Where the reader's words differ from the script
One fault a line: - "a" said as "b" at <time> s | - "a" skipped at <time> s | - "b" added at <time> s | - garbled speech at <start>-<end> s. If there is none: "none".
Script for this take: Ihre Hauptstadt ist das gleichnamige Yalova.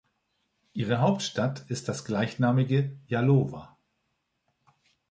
none